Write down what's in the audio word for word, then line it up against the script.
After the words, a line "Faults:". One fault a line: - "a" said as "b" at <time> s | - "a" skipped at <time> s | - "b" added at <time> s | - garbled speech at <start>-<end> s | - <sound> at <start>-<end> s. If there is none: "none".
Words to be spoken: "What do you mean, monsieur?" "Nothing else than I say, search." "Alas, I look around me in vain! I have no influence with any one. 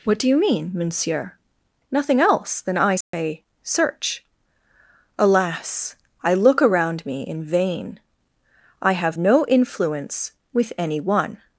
"What do you mean, monsieur?" "Nothing else than I say, search." "Alas, I look around me in vain! I have no influence with any one.
Faults:
- dropout at 3.0-3.1 s